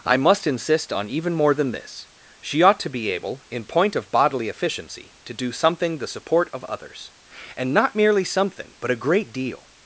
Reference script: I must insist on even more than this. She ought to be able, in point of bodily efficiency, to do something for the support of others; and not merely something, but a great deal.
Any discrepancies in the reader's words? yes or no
yes